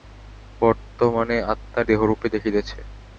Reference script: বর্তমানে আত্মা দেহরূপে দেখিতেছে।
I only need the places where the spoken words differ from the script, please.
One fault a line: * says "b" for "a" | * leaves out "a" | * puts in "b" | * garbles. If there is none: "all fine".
all fine